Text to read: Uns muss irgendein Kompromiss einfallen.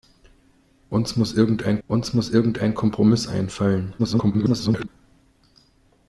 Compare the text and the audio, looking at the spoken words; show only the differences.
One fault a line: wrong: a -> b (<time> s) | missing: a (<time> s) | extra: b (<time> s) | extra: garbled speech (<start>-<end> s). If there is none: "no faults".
extra: uns muss irgendein (1.9 s)
extra: garbled speech (4.0-4.9 s)